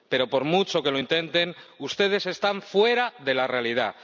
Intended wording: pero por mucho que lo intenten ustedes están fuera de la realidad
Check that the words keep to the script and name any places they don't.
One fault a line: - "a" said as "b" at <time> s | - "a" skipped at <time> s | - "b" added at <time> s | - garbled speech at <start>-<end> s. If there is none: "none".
none